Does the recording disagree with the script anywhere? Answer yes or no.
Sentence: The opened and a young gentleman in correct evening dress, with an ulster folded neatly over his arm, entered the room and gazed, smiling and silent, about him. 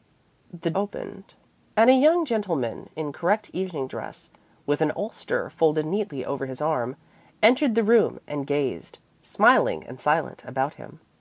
no